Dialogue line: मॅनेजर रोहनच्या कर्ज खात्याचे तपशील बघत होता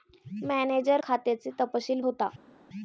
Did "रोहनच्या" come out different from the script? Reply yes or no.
yes